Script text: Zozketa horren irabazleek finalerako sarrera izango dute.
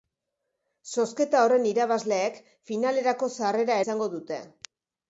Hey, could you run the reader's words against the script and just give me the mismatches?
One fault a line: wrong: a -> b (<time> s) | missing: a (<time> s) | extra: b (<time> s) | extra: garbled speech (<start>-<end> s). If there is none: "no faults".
no faults